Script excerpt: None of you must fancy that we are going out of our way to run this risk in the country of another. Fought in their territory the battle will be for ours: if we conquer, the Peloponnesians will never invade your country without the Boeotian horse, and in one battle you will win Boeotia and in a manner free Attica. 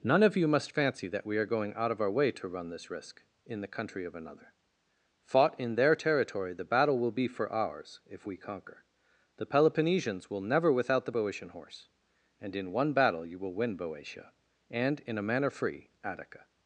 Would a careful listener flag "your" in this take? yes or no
yes